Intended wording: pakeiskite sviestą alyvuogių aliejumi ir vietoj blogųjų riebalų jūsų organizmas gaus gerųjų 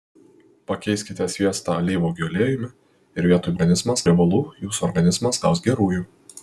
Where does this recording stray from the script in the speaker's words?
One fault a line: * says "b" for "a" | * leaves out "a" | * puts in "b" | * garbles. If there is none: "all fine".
* says "organizmas" for "blogųjų"